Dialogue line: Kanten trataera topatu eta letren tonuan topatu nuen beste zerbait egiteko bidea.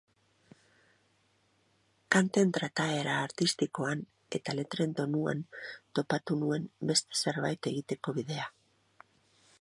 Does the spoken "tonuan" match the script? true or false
true